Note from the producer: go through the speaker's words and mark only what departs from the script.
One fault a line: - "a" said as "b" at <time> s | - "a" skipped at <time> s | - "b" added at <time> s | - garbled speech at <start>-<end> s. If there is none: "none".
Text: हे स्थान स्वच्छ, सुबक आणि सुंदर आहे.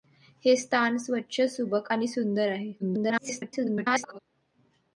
- garbled speech at 2.8-4.2 s